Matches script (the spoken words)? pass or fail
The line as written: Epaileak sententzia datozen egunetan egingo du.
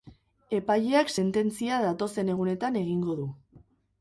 pass